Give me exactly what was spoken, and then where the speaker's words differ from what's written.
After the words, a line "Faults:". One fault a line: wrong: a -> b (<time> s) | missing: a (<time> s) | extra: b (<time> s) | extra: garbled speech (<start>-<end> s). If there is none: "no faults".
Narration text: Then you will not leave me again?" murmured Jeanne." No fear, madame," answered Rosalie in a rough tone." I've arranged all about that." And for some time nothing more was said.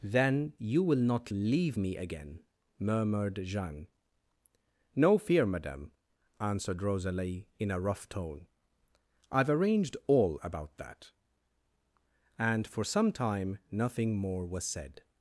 Then you will not leave me again?" murmured Jeanne." No fear, madame," answered Rosalie in a rough tone." I've arranged all about that." And for some time nothing more was said.
Faults:
no faults